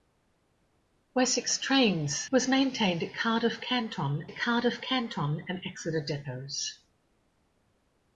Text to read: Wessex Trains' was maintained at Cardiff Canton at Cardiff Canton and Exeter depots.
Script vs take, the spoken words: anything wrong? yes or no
no